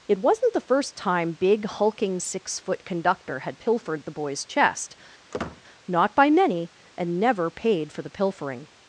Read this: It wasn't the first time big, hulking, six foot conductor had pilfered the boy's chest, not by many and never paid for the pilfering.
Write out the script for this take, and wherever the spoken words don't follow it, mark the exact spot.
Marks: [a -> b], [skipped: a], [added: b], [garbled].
It wasn't the first time big, hulking, six foot conductor had pilfered the boy's chest, not by many and never paid for the pilfering.